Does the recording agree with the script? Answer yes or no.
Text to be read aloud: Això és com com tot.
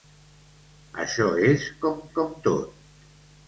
yes